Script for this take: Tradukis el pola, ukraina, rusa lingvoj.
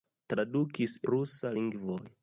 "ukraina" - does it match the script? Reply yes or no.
no